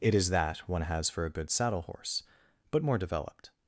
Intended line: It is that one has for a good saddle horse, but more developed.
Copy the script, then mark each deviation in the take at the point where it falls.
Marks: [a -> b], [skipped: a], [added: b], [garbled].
It is that one has for a good saddle horse, but more developed.